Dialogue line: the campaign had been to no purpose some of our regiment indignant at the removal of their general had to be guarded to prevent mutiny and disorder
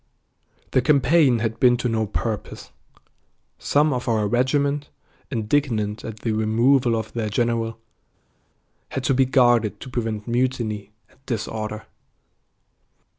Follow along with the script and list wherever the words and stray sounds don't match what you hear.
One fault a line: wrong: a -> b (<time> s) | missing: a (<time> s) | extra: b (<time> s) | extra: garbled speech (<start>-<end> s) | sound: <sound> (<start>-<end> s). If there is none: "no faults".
no faults